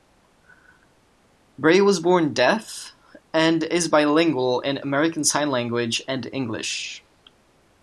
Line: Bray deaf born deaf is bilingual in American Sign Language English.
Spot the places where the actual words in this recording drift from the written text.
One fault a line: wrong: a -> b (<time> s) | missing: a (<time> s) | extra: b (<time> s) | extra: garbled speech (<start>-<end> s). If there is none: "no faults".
wrong: deaf -> was (1.8 s)
extra: and (3.3 s)
extra: and (6.1 s)